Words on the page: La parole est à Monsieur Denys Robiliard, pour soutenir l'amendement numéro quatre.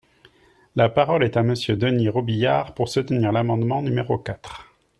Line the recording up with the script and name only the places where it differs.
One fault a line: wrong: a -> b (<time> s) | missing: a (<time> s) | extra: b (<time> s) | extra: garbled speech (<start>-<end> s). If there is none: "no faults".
no faults